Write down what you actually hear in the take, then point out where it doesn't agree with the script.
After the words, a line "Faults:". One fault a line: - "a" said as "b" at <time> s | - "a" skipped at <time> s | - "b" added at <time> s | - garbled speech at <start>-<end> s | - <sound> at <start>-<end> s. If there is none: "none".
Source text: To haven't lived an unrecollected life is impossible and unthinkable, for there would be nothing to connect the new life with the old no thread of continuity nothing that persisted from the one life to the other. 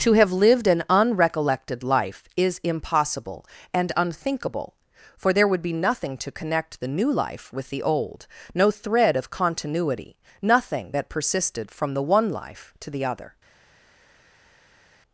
To have lived an unrecollected life is impossible and unthinkable, for there would be nothing to connect the new life with the old no thread of continuity nothing that persisted from the one life to the other.
Faults:
- "haven't" said as "have" at 0.1 s